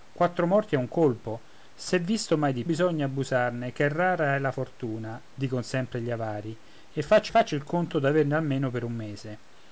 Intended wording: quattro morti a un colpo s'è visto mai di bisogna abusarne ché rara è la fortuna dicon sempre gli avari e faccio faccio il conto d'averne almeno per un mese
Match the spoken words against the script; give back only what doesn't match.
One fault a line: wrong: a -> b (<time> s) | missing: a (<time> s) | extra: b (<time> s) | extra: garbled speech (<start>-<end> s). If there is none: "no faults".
no faults